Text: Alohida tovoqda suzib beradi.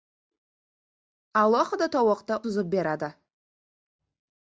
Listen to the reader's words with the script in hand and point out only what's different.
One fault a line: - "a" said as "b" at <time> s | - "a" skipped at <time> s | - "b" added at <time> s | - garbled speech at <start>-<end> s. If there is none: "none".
none